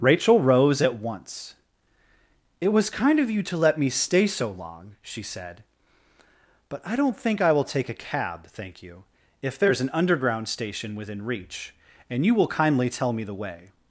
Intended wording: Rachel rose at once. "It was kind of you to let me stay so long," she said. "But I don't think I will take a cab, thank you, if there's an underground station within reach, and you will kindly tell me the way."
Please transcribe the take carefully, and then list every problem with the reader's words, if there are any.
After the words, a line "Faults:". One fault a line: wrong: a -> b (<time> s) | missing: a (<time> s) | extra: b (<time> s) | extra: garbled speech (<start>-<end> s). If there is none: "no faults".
Rachel rose at once. "It was kind of you to let me stay so long," she said. "But I don't think I will take a cab, thank you, if there's an underground station within reach, and you will kindly tell me the way."
Faults:
no faults